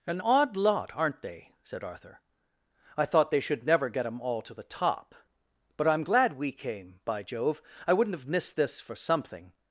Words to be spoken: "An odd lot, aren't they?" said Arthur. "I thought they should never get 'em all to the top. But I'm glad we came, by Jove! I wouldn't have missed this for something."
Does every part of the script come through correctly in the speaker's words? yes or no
yes